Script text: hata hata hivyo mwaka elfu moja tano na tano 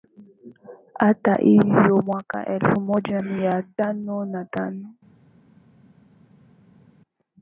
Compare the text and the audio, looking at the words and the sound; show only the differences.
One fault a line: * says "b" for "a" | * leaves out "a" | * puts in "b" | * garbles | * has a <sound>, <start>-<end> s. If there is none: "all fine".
* leaves out "hata"
* puts in "mia"